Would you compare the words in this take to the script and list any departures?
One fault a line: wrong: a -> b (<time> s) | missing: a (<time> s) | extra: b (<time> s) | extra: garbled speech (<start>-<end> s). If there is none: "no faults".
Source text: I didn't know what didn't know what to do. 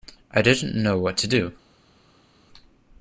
missing: didn't know what (1.2 s)